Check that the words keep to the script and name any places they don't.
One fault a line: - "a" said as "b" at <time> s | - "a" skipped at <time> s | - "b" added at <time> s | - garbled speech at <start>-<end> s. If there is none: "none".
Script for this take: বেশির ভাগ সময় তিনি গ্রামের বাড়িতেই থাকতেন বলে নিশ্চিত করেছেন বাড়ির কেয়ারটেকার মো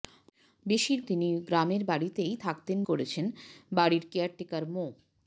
- "ভাগ সময়" skipped at 1.0 s
- "বলে নিশ্চিত" skipped at 2.8 s